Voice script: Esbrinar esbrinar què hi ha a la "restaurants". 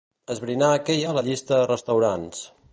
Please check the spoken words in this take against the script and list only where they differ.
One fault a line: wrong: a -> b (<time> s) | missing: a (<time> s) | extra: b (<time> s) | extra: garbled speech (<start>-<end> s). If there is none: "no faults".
missing: esbrinar (0.7 s)
extra: llista (1.3 s)